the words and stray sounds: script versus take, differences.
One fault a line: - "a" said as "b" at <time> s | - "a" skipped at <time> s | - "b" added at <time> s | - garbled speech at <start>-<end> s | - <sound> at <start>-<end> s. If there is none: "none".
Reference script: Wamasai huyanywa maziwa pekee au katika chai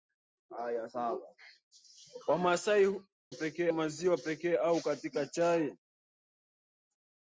- "huyanywa" said as "pekee" at 3.3 s